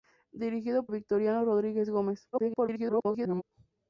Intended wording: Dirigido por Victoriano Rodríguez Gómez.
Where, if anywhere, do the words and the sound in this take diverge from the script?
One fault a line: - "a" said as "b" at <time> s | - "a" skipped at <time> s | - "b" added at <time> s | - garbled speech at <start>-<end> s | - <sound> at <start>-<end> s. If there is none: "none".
- "por" skipped at 0.9 s
- garbled speech at 2.3-3.4 s